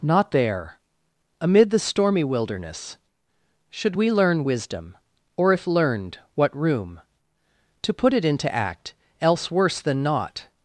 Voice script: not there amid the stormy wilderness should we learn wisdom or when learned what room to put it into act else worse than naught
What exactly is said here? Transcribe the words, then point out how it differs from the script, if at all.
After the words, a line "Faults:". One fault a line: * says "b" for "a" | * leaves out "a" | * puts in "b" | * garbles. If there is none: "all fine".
not there amid the stormy wilderness should we learn wisdom or if learned what room to put it into act else worse than naught
Faults:
* says "if" for "when"